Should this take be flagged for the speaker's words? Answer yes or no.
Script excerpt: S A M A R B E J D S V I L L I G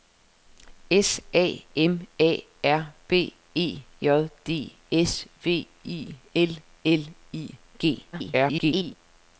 yes